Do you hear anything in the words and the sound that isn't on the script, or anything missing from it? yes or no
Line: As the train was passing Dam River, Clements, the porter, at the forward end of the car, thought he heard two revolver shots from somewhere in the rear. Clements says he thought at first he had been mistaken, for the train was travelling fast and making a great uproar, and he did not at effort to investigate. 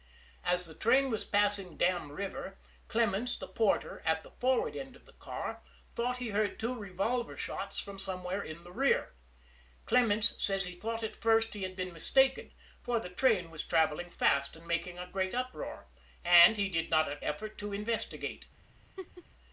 yes